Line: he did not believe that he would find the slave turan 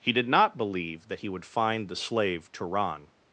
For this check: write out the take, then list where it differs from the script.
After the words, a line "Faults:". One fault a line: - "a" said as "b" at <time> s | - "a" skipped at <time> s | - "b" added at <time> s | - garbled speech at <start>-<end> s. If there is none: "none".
he did not believe that he would find the slave turan
Faults:
none